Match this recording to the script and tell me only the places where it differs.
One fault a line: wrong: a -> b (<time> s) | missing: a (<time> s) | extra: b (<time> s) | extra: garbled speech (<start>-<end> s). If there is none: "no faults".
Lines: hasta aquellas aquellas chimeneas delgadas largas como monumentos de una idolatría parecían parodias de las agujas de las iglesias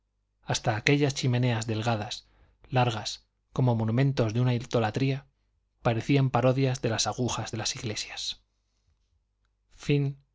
missing: aquellas (1.1 s)